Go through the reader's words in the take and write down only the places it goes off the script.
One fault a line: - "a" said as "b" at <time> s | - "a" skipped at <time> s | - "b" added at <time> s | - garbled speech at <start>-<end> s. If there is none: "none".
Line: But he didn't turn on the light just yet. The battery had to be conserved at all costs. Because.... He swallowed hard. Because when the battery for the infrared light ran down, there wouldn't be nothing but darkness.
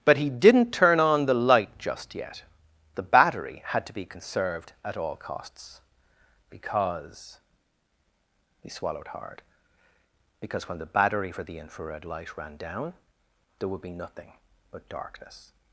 - "wouldn't" said as "would" at 13.7 s